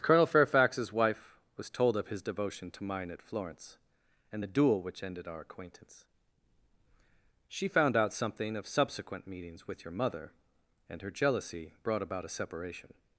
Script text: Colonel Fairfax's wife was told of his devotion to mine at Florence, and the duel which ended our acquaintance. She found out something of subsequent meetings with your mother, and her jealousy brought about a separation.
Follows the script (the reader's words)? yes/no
yes